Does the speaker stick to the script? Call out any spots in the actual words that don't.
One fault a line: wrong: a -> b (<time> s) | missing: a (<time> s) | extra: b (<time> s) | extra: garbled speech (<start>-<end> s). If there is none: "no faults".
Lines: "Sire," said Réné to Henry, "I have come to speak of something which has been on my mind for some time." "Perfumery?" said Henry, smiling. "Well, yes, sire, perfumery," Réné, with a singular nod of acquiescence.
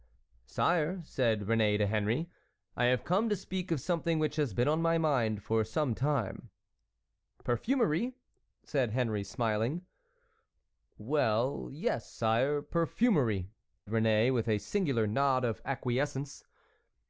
no faults